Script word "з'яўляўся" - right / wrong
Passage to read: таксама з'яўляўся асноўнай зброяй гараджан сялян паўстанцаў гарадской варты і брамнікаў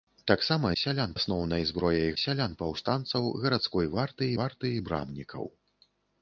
wrong